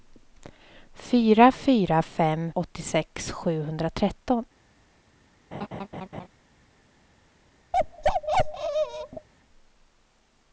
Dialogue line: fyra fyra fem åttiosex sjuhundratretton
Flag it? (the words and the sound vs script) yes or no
yes